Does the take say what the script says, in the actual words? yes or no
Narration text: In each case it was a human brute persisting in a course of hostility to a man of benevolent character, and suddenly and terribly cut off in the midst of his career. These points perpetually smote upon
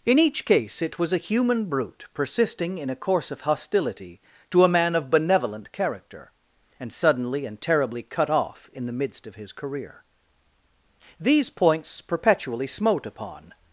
yes